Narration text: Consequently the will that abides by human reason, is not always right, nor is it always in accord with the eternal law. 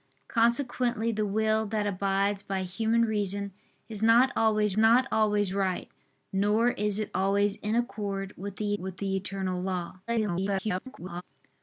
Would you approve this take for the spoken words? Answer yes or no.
no